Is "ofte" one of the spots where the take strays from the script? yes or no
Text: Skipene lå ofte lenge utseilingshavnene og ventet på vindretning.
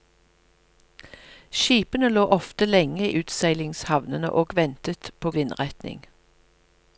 no